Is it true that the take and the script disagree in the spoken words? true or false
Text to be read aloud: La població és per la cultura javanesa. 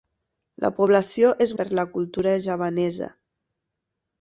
false